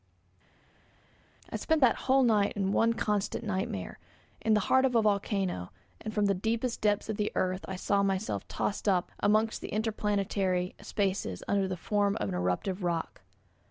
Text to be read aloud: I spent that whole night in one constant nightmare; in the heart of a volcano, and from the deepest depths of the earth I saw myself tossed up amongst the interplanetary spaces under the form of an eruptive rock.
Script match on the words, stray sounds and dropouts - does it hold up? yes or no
yes